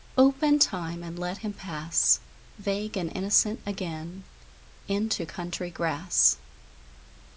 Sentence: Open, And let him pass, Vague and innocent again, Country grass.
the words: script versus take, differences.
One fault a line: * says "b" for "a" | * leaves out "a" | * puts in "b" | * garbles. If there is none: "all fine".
* puts in "Time"
* puts in "Into"